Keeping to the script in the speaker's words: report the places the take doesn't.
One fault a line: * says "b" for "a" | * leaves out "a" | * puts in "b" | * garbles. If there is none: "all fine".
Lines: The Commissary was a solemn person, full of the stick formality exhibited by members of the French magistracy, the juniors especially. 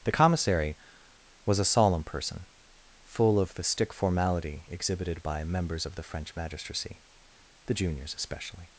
all fine